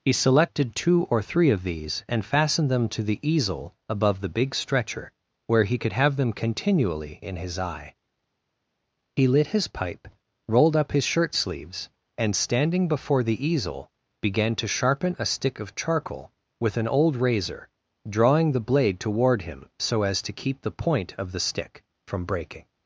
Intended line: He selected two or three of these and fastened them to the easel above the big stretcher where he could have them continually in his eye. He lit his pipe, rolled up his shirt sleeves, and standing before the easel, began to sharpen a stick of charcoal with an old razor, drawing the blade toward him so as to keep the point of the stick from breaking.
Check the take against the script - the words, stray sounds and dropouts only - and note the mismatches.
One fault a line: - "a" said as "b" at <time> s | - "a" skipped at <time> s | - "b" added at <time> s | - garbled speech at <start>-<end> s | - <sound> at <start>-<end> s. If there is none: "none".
none